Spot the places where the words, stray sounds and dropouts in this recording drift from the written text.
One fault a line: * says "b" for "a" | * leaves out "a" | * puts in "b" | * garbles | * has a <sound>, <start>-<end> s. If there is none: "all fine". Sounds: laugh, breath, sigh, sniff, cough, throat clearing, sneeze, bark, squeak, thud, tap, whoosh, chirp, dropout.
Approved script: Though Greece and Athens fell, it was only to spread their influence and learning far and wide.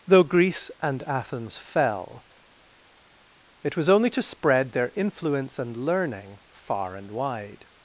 all fine